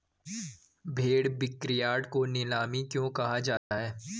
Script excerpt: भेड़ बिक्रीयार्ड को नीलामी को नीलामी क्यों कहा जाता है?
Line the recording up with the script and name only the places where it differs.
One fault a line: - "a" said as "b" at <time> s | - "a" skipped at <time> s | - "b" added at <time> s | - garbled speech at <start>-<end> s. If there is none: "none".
- "को नीलामी" skipped at 2.8 s